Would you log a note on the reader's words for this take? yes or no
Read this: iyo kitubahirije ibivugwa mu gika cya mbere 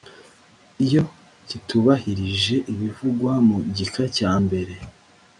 no